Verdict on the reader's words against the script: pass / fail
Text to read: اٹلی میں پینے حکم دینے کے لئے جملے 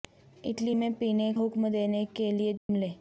pass